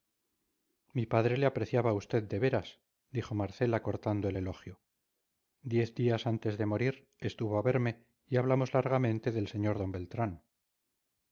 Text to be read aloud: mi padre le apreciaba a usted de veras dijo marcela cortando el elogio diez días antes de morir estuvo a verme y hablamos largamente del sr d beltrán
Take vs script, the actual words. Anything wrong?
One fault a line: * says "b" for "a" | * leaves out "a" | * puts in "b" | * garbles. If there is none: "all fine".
all fine